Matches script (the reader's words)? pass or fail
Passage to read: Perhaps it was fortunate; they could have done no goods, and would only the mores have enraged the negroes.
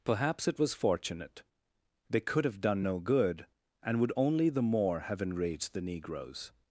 fail